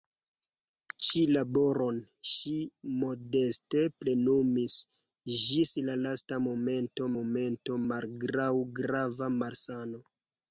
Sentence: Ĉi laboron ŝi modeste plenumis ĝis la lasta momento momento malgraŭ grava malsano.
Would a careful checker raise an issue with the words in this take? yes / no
no